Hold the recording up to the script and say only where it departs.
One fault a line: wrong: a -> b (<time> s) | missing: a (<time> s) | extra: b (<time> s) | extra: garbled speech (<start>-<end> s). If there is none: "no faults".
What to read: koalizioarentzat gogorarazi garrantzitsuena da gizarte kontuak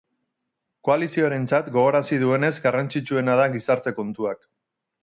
extra: duenez (2.2 s)